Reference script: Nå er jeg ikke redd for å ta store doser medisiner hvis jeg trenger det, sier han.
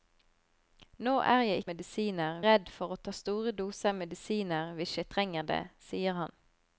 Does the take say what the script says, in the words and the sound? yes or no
no